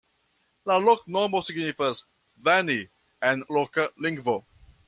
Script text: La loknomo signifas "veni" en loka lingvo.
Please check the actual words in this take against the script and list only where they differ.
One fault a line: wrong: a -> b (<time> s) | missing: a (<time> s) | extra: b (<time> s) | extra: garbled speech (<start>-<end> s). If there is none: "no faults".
no faults